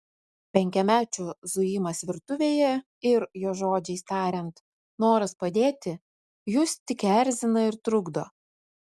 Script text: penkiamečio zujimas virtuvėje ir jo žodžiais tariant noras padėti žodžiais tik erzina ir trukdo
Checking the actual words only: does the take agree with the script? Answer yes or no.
no